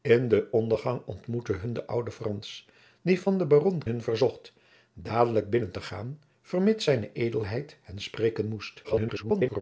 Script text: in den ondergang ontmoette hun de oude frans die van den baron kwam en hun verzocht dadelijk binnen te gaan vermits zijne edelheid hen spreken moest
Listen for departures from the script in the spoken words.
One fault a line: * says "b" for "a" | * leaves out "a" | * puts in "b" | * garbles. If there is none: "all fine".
* leaves out "kwam en"
* garbles